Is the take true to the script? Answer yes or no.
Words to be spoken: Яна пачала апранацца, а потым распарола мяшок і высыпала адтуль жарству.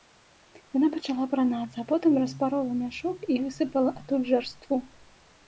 yes